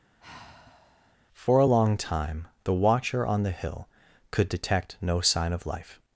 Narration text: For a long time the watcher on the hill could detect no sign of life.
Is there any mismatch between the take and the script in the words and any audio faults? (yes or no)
yes